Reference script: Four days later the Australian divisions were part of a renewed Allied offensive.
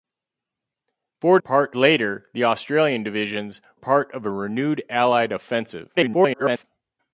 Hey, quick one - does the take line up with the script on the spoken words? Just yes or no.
no